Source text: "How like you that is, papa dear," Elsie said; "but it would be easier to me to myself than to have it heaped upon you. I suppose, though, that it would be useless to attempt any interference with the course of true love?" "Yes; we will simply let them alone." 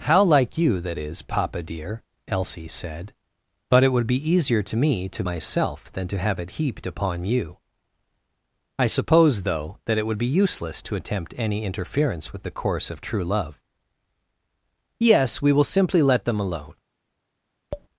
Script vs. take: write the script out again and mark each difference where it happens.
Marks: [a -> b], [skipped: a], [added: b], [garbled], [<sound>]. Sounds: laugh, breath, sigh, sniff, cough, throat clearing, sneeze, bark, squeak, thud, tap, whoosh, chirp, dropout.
"How like you that is, papa dear," Elsie said; "but it would be easier to me to myself than to have it heaped upon you. I suppose, though, that it would be useless to attempt any interference with the course of true love?" "Yes; we will simply let them alone." [tap]